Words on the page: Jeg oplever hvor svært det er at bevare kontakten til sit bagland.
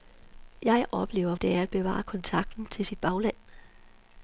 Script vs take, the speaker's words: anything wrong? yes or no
yes